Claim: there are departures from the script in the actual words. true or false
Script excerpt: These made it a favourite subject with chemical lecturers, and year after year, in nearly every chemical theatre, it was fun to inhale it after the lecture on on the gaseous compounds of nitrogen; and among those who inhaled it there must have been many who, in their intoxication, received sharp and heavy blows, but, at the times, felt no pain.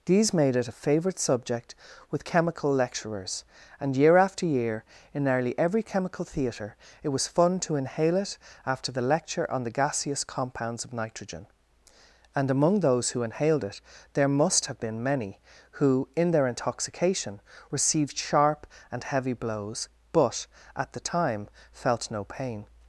true